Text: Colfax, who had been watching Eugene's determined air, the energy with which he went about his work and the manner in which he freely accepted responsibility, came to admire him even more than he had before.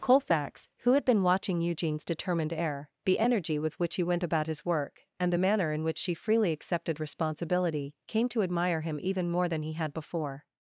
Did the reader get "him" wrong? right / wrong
right